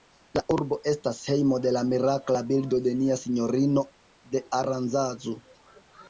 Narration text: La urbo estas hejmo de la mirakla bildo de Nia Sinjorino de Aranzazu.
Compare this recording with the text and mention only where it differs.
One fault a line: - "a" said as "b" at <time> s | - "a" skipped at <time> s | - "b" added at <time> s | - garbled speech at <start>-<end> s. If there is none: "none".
none